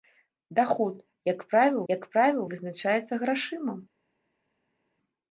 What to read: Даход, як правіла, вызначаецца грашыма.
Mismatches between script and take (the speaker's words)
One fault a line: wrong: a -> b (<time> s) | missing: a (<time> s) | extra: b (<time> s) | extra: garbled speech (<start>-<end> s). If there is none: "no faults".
extra: як правіла (1.9 s)